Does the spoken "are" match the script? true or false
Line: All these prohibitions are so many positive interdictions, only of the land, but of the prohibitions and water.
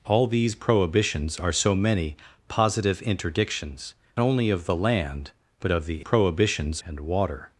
true